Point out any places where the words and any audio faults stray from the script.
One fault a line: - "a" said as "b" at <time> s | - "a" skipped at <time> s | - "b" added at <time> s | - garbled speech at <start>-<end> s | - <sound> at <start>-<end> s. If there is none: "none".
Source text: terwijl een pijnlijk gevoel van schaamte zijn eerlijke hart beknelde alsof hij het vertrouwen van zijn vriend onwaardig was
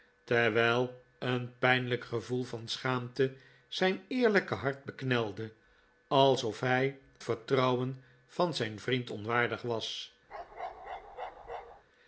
- "het" skipped at 7.0 s
- bark at 10.3-11.8 s